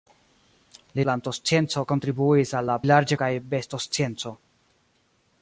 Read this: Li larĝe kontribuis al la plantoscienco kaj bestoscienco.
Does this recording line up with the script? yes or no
no